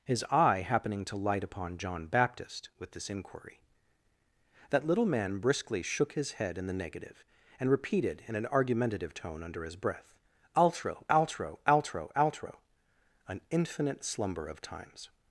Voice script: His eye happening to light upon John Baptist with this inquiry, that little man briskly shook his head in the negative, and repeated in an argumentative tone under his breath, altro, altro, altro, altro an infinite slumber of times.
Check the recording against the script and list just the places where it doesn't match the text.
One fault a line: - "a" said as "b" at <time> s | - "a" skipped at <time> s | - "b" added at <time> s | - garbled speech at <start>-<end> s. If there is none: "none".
none